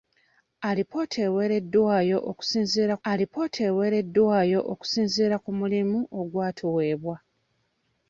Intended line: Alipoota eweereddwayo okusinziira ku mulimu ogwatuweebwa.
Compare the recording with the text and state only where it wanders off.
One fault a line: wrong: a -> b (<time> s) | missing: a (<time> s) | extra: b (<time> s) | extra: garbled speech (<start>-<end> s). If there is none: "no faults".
extra: alipoota eweereddwayo okusinziira (3.1 s)